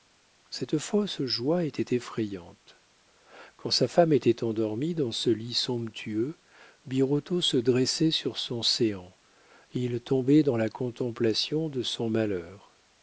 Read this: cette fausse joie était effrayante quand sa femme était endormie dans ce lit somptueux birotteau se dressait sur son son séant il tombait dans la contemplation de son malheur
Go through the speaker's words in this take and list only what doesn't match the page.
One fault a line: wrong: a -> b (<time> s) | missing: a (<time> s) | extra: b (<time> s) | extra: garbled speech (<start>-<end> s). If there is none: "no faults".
missing: son (8.6 s)